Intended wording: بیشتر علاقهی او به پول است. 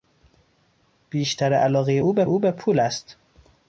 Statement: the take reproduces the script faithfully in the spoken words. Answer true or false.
false